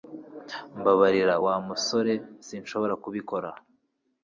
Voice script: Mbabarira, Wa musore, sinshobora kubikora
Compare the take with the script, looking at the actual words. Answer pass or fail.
pass